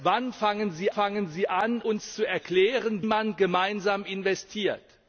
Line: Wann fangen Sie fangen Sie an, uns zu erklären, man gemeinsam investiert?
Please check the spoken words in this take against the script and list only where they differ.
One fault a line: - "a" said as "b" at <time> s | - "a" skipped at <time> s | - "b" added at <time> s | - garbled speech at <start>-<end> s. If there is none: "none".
none